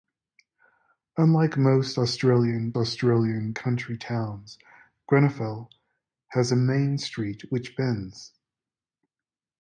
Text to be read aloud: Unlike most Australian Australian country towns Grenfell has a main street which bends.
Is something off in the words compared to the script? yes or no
no